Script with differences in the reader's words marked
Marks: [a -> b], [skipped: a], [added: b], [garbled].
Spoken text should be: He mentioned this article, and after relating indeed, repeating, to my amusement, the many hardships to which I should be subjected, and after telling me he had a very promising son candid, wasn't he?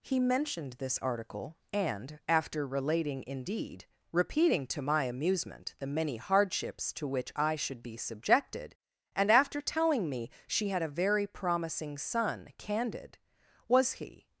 He mentioned this article, and after relating indeed, repeating, to my amusement, the many hardships to which I should be subjected, and after telling me [he -> she] had a very promising son candid, [wasn't -> was] he?